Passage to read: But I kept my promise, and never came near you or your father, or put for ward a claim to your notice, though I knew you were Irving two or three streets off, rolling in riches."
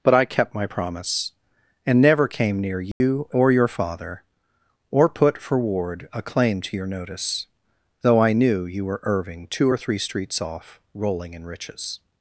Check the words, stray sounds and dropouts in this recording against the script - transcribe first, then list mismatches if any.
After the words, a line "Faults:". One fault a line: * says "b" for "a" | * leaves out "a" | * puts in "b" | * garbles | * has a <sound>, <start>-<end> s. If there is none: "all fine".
But I kept my promise, and never came near you or your father, or put for ward a claim to your notice, though I knew you were Irving two or three streets off, rolling in riches."
Faults:
* has a dropout, 2.9-3.0 s